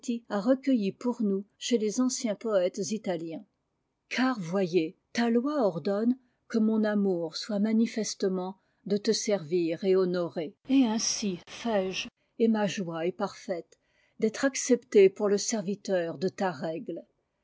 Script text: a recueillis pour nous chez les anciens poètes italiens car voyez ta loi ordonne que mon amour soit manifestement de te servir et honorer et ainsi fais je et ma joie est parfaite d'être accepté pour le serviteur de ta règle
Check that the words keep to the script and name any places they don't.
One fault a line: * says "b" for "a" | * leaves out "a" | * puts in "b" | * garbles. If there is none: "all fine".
all fine